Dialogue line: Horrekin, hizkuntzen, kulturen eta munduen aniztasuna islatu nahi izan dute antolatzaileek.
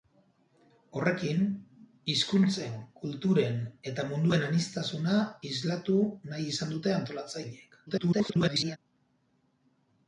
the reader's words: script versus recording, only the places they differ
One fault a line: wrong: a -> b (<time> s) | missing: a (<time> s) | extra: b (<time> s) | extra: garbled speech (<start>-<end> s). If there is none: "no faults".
extra: garbled speech (7.9-8.8 s)